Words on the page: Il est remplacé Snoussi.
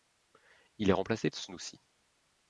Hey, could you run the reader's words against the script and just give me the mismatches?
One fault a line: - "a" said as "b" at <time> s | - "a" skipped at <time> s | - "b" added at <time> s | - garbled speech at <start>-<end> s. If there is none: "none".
none